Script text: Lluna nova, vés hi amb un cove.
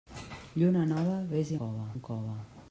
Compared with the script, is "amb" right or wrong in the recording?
wrong